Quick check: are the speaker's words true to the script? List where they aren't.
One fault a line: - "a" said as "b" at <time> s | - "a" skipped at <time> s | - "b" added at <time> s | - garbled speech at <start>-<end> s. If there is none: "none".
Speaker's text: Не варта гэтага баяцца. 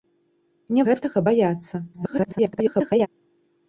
- "варта" skipped at 0.9 s
- garbled speech at 1.9-3.1 s